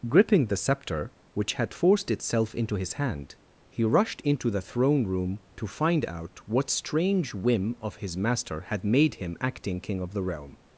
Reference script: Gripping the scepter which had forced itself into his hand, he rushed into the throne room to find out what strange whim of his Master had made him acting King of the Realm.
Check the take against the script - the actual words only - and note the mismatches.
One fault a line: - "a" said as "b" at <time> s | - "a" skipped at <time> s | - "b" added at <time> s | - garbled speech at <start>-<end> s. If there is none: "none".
none